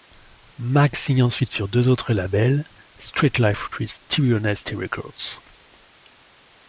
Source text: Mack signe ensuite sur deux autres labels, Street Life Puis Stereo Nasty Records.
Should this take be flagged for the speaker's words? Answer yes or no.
no